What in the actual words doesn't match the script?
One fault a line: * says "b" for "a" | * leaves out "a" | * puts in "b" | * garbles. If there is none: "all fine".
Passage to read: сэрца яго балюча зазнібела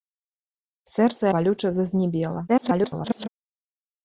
* leaves out "яго"
* garbles